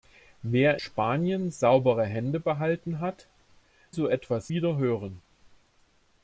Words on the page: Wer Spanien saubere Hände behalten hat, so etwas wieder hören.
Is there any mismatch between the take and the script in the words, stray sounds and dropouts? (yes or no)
no